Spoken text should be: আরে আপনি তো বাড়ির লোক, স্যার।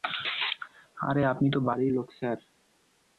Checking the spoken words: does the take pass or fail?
pass